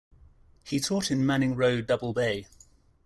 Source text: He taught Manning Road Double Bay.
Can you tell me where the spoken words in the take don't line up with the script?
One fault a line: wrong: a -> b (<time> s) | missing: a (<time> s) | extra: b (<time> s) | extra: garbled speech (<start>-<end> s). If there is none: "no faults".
extra: in (1.1 s)